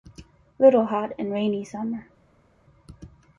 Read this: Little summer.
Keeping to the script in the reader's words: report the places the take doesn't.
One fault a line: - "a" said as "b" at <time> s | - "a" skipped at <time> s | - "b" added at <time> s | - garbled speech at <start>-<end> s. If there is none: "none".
- "hot and rainy" added at 0.9 s